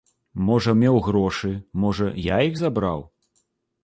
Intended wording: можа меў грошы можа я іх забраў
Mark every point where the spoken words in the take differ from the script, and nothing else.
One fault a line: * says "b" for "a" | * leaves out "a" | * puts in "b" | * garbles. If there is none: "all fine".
all fine